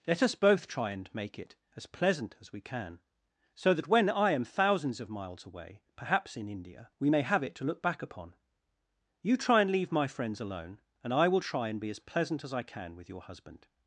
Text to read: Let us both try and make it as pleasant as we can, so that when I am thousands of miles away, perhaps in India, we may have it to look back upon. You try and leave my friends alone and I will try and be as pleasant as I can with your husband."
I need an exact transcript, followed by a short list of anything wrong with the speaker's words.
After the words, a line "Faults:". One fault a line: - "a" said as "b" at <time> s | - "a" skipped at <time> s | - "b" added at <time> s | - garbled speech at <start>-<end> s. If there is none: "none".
Let us both try and make it as pleasant as we can, so that when I am thousands of miles away, perhaps in India, we may have it to look back upon. You try and leave my friends alone and I will try and be as pleasant as I can with your husband."
Faults:
none